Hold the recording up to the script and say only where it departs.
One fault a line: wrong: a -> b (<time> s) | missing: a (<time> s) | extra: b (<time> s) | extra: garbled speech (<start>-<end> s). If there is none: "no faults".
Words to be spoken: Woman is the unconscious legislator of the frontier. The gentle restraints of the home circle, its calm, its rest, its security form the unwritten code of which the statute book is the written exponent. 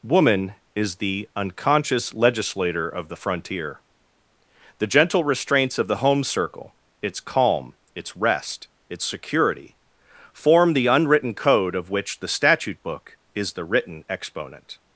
no faults